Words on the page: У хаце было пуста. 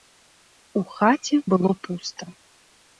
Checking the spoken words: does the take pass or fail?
pass